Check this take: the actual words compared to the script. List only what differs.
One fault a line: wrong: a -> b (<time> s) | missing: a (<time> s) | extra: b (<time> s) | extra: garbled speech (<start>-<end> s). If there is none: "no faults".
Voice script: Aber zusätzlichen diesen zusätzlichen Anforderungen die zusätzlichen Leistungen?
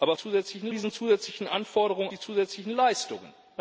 no faults